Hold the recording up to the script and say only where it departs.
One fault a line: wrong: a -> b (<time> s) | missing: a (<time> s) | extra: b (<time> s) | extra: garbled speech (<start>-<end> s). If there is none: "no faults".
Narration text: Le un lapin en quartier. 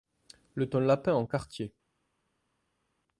no faults